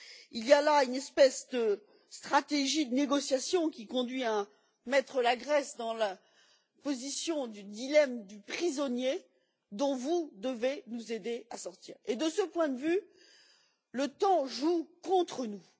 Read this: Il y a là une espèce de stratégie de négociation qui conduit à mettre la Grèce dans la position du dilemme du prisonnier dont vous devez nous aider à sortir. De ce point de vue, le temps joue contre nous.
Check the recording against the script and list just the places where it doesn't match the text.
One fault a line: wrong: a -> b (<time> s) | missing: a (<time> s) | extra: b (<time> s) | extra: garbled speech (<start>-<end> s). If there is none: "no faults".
no faults